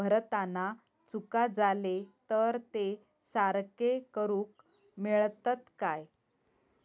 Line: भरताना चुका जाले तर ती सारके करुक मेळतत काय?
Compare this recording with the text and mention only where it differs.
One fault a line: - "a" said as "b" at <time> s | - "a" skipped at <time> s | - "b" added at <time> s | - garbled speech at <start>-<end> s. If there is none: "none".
- "ती" said as "ते" at 2.7 s